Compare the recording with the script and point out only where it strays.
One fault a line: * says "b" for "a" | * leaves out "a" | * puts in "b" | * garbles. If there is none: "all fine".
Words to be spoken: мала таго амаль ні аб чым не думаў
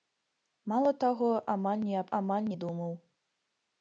* says "амаль" for "чым"